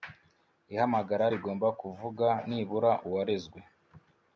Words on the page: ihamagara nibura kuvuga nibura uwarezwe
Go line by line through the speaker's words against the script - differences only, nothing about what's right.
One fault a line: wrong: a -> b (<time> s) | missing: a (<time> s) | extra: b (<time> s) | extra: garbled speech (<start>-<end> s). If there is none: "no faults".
wrong: nibura -> rigomba (1.3 s)